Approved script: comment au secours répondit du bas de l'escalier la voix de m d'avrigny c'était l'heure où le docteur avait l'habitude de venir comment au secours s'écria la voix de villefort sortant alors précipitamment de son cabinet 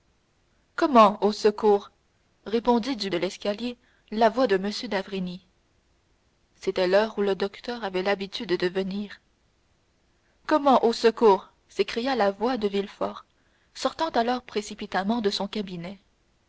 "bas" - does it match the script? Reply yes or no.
no